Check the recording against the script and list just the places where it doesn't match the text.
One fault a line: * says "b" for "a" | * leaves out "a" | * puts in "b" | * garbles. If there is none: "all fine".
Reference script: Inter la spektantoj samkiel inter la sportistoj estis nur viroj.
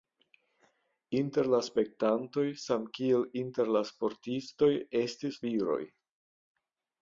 * leaves out "nur"